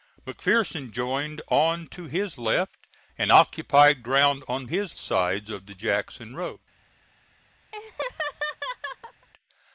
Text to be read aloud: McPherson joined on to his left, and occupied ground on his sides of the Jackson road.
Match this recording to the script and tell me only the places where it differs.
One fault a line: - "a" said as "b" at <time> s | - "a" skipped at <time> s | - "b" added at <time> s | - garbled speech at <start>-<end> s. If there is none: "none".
none